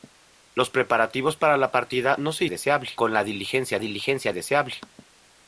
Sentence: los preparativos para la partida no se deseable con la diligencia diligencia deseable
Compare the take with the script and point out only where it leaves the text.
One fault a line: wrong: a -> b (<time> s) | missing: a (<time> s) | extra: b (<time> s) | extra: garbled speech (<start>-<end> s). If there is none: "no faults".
no faults